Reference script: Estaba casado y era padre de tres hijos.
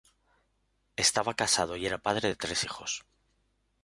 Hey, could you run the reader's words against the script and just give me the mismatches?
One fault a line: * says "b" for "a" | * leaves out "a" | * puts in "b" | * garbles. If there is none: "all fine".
all fine